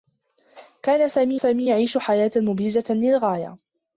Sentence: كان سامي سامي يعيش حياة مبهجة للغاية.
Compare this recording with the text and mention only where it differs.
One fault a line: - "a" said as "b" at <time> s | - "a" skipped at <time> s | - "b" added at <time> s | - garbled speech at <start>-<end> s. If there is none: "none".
none